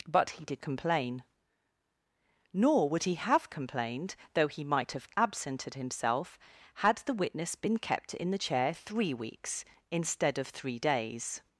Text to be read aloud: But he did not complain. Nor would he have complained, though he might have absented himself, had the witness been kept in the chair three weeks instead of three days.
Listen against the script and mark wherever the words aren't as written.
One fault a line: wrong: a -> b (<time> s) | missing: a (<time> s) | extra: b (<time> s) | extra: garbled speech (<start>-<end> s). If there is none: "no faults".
missing: not (0.6 s)